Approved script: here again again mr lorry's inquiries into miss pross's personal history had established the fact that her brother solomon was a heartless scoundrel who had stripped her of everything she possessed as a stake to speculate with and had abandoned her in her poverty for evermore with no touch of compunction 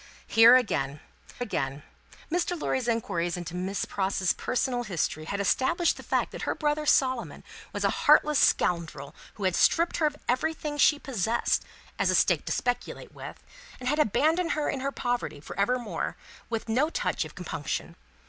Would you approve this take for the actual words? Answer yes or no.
yes